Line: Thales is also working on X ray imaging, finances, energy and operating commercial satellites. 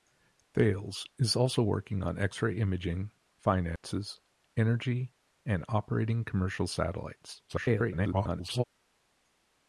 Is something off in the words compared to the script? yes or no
yes